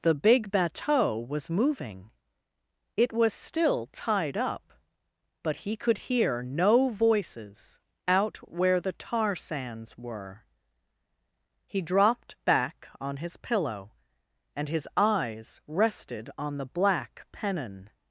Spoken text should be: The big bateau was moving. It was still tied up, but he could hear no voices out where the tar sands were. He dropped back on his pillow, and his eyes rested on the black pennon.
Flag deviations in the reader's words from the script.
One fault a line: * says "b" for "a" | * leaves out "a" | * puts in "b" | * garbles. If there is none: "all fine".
all fine